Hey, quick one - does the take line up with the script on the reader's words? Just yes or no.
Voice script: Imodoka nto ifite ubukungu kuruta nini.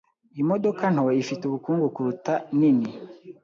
yes